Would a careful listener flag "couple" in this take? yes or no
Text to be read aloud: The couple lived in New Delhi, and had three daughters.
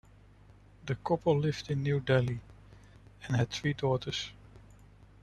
no